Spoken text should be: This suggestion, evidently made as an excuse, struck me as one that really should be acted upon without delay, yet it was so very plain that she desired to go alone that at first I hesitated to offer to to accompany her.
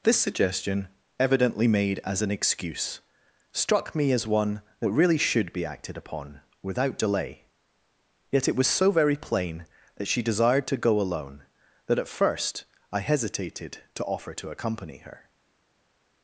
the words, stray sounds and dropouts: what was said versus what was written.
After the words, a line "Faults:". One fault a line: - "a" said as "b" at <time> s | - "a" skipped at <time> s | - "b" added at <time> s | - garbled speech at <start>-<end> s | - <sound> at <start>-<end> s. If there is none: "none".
This suggestion, evidently made as an excuse, struck me as one that really should be acted upon without delay, yet it was so very plain that she desired to go alone that at first I hesitated to offer to accompany her.
Faults:
- "to" skipped at 14.5 s